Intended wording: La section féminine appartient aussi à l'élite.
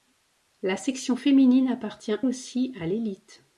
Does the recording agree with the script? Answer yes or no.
yes